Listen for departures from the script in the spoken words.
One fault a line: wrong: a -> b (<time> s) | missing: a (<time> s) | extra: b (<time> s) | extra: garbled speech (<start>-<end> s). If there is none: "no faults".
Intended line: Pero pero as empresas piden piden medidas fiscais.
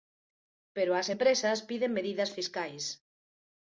missing: pero (0.9 s)
missing: piden (1.9 s)